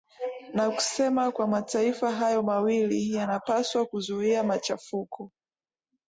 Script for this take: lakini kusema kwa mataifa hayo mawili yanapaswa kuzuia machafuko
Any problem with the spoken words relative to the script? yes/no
yes